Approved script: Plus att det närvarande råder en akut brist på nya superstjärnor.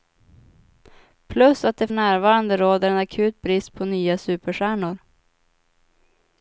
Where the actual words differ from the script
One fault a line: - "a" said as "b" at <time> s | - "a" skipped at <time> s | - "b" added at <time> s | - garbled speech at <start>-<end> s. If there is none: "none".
none